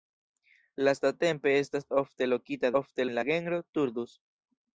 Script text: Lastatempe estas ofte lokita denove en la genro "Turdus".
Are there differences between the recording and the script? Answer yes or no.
yes